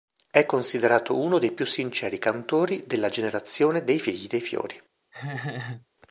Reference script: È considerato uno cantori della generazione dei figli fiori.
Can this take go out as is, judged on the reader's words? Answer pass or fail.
fail